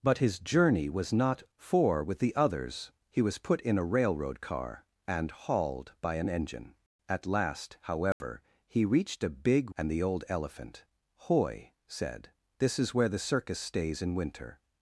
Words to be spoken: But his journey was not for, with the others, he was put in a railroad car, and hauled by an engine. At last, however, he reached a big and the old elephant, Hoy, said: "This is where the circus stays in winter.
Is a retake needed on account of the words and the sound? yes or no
yes